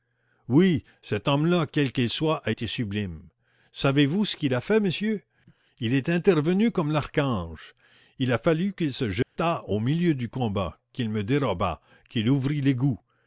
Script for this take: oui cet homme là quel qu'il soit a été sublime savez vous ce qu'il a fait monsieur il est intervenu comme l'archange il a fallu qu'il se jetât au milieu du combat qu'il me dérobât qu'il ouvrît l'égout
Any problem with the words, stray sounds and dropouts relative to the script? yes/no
yes